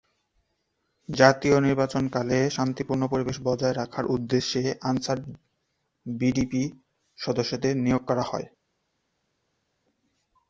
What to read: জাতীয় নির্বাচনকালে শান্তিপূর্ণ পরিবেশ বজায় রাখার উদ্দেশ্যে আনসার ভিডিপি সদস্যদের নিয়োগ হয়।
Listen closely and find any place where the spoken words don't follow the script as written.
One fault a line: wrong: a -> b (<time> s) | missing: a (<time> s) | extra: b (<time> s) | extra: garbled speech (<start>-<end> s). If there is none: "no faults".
extra: করা (8.1 s)